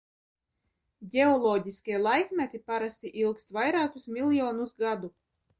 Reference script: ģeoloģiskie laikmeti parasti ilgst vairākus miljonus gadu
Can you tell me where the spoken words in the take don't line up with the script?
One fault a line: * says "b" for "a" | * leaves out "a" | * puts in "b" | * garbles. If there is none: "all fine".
all fine